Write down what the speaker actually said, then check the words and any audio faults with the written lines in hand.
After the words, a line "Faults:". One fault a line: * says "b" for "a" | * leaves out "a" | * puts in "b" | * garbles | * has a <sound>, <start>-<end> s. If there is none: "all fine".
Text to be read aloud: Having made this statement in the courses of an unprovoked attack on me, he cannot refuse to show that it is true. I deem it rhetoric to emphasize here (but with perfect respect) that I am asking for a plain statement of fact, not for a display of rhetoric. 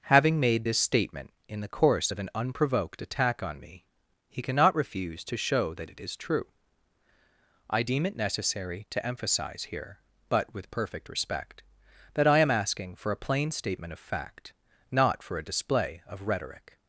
Having made this statement in the course of an unprovoked attack on me, he cannot refuse to show that it is true. I deem it necessary to emphasize here (but with perfect respect) that I am asking for a plain statement of fact, not for a display of rhetoric.
Faults:
* says "course" for "courses"
* says "necessary" for "rhetoric"